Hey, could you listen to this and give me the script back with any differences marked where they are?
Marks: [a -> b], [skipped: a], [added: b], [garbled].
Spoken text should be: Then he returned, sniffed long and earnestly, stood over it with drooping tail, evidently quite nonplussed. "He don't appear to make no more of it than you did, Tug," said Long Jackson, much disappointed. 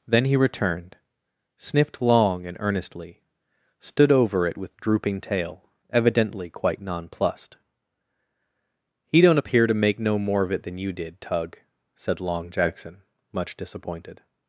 Then he returned, sniffed long and earnestly, stood over it with drooping tail, evidently quite nonplussed. "He don't appear to make no more of it than you did, Tug," said Long Jackson, much disappointed.